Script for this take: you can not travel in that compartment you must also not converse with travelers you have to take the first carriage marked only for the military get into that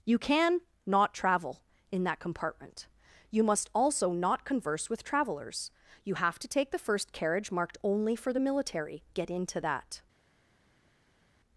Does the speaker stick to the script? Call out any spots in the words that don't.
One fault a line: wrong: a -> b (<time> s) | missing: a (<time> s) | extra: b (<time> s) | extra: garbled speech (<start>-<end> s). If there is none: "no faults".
no faults